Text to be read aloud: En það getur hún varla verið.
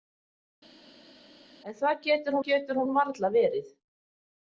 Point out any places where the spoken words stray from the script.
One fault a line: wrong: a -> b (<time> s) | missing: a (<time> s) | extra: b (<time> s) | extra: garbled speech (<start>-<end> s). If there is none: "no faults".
extra: getur (2.5 s)